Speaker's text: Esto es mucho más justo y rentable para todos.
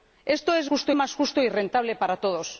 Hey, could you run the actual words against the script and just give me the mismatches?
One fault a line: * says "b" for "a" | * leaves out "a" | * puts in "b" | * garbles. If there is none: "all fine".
* says "justo" for "mucho"